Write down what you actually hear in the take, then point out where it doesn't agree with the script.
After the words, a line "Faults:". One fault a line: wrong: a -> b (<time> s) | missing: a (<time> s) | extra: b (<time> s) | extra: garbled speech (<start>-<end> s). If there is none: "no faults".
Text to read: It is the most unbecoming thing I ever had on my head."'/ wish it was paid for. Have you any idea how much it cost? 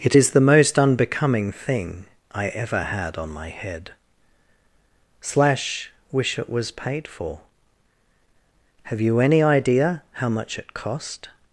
It is the most unbecoming thing I ever had on my head."'/ slash wish it was paid for. Have you any idea how much it cost?
Faults:
extra: slash (5.2 s)